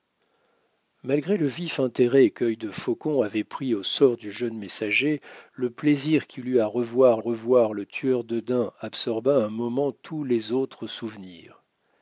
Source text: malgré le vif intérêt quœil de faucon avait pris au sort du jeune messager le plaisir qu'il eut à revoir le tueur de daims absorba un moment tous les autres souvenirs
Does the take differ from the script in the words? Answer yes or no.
yes